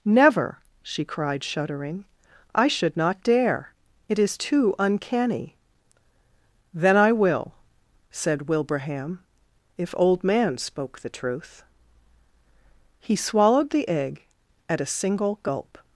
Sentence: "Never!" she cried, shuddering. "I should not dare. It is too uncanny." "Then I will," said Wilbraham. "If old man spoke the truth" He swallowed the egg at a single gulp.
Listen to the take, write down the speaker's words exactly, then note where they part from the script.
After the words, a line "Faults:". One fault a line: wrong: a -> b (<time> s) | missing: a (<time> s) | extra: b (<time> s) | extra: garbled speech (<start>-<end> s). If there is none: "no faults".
"Never!" she cried, shuddering. "I should not dare. It is too uncanny." "Then I will," said Wilbraham. "If old man spoke the truth" He swallowed the egg at a single gulp.
Faults:
no faults